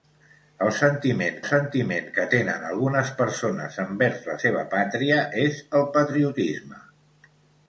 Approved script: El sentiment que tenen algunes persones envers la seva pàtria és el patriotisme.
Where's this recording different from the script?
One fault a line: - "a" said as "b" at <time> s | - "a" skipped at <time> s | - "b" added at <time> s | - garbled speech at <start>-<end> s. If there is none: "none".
- "sentiment" added at 1.4 s